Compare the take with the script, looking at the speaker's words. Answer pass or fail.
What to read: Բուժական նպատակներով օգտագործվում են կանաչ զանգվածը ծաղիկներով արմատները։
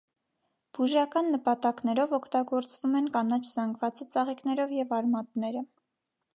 fail